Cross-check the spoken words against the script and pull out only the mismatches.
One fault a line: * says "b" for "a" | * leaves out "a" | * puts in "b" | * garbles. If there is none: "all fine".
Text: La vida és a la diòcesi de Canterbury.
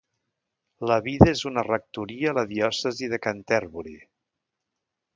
* puts in "una rectoria"